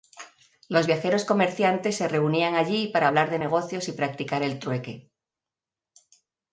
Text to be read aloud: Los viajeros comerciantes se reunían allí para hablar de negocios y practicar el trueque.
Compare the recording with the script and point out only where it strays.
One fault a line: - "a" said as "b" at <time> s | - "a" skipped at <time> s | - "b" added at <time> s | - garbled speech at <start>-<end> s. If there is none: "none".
none